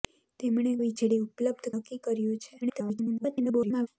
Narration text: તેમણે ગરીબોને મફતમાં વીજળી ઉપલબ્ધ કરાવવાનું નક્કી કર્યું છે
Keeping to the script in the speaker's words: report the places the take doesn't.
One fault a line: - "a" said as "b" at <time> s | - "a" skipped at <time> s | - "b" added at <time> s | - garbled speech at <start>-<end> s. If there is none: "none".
- "ગરીબોને મફતમાં" skipped at 0.7 s
- "કરાવવાનું" skipped at 1.7 s
- garbled speech at 2.6-3.9 s